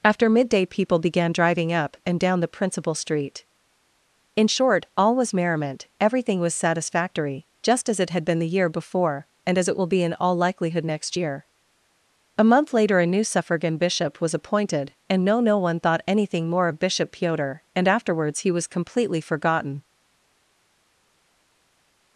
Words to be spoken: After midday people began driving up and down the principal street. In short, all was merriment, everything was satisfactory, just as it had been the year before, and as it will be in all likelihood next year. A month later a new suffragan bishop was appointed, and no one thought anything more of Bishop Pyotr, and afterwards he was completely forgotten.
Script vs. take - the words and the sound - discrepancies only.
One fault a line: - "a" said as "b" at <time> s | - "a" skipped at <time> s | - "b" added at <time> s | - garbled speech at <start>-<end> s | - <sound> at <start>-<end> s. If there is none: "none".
- "no" added at 15.4 s